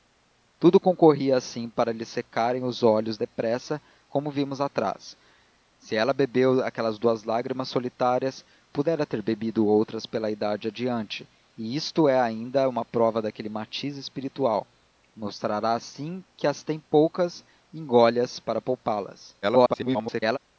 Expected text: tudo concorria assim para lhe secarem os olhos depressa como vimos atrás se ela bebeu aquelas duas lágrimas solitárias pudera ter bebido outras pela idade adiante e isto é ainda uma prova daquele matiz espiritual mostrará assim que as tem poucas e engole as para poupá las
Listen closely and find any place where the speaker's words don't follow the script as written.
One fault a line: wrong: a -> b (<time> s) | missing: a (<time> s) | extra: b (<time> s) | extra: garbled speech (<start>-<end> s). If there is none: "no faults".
extra: garbled speech (19.4-20.4 s)